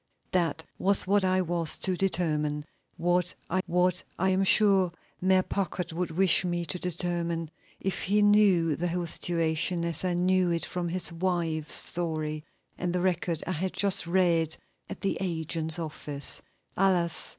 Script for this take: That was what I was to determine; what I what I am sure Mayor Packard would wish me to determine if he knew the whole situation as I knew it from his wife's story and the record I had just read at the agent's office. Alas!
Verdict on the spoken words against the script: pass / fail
pass